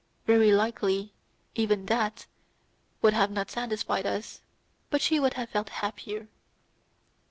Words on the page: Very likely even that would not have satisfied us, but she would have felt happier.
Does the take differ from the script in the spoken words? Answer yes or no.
no